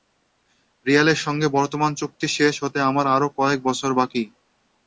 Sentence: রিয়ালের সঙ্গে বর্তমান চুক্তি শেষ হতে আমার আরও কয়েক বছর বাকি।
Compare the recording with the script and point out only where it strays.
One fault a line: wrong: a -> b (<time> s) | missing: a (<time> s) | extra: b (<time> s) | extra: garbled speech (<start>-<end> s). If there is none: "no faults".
no faults